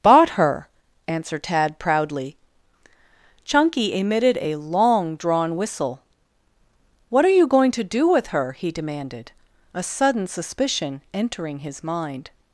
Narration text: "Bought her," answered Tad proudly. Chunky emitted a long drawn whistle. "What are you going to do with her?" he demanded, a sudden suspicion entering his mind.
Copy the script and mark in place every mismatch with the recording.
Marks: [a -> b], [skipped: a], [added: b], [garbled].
"Bought her," answered Tad proudly. Chunky emitted a long drawn whistle. "What are you going to do with her?" he demanded, a sudden suspicion entering his mind.